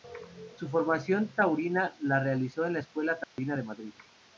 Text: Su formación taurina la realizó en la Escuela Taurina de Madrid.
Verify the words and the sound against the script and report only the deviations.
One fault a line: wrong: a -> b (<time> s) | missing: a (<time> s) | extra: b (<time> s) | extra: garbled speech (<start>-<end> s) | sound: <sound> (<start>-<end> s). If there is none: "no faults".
sound: dropout (3.2-3.4 s)